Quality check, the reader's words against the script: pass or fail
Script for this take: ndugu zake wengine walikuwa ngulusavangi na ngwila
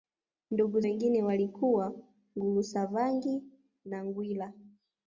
fail